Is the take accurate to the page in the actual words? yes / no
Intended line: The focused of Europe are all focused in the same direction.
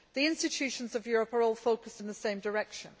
no